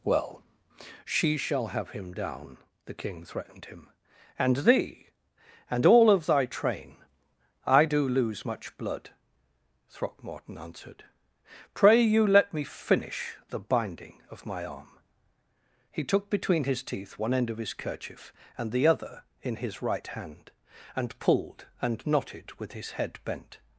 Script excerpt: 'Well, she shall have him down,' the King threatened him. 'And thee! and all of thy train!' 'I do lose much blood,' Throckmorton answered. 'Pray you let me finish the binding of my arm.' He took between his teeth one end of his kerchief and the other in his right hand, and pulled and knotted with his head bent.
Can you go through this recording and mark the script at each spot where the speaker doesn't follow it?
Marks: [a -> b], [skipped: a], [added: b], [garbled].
'Well, she shall have him down,' the King threatened him. 'And thee! and all of thy train!' 'I do lose much blood,' Throckmorton answered. 'Pray you let me finish the binding of my arm.' He took between his teeth one end of his kerchief and the other in his right hand, and pulled and knotted with his head bent.